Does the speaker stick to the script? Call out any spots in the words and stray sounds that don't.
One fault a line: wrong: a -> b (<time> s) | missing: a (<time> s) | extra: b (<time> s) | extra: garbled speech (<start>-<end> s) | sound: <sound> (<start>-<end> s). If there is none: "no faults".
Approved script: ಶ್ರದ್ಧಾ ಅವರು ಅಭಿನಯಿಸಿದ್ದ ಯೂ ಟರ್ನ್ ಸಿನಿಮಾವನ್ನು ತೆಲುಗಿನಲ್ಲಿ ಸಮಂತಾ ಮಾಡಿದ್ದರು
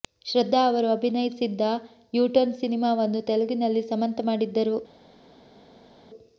no faults